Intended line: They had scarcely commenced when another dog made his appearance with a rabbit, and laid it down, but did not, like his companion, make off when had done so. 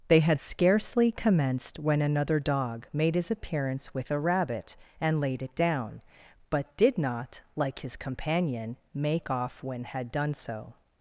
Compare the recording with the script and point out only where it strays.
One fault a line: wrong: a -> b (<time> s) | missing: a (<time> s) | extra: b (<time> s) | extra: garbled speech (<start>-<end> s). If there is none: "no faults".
no faults